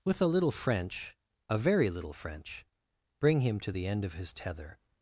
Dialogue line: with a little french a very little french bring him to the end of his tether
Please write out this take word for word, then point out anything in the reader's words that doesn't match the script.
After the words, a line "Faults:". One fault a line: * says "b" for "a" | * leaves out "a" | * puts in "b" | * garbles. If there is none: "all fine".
with a little french a very little french bring him to the end of his tether
Faults:
all fine